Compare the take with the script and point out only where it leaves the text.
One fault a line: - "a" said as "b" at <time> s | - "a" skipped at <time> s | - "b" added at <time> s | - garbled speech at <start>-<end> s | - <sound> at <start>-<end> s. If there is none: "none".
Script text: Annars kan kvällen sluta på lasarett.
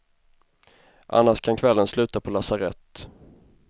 none